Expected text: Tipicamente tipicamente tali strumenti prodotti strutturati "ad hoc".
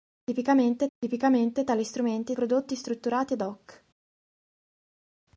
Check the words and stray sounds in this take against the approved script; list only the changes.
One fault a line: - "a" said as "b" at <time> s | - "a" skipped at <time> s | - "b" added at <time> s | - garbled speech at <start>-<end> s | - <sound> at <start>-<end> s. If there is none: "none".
none